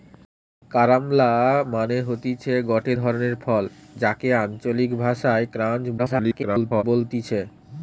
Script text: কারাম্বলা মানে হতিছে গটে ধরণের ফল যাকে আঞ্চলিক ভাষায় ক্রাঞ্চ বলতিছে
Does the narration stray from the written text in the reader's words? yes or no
yes